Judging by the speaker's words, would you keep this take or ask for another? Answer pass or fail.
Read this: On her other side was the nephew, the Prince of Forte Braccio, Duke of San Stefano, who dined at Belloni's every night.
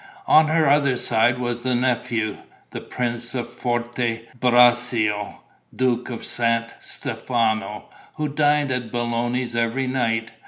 pass